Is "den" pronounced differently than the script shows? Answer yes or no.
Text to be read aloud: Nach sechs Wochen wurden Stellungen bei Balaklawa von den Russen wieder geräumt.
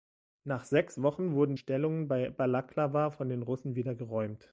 no